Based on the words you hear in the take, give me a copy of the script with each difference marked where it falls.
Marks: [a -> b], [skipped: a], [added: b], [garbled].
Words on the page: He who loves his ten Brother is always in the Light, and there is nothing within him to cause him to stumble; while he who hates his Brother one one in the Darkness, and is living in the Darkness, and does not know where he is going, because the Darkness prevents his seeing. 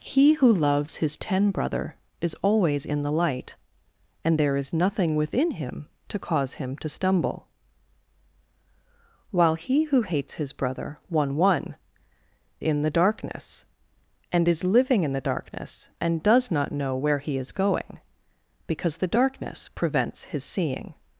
He who loves his ten Brother is always in the Light, and there is nothing within him to cause him to stumble; while he who hates his Brother one one in the Darkness, and is living in the Darkness, and does not know where he is going, because the Darkness prevents his seeing.